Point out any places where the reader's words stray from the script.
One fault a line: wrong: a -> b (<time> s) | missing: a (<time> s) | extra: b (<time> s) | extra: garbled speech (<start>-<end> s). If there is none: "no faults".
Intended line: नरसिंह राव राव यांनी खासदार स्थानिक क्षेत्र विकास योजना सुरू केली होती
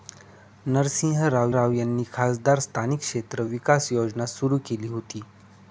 no faults